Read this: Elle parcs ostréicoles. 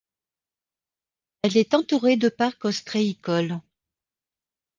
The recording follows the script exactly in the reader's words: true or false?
false